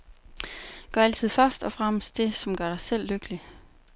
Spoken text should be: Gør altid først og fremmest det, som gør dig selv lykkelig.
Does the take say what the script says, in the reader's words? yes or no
yes